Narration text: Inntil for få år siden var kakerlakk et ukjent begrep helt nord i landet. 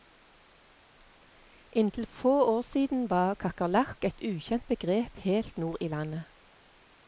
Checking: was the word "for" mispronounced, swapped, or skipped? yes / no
yes